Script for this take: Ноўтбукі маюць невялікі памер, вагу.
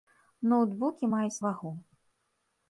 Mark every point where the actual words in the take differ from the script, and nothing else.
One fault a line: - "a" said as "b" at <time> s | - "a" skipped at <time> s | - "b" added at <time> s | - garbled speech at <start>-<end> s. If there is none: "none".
- "невялікі памер" skipped at 1.4 s